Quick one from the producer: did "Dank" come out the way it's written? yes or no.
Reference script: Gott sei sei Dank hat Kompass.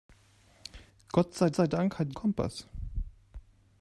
yes